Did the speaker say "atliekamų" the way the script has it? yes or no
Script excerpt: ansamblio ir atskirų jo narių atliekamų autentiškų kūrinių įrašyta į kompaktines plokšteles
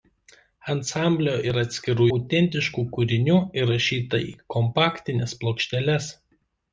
no